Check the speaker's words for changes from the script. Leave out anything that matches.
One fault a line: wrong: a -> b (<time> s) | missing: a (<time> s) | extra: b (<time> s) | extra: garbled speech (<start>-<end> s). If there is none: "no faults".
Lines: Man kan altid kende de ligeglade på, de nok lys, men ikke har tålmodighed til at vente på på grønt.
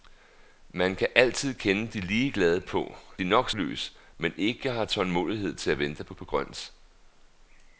no faults